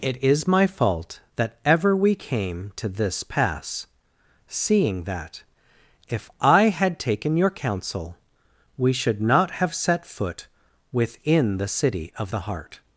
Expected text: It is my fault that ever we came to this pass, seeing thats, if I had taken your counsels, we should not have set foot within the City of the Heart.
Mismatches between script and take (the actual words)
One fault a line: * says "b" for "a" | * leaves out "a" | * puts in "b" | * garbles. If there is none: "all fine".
* says "that" for "thats"
* says "counsel" for "counsels"